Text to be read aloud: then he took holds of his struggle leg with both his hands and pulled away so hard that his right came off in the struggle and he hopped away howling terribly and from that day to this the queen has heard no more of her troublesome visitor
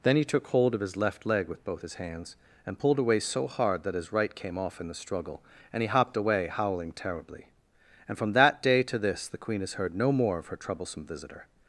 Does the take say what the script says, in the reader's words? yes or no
no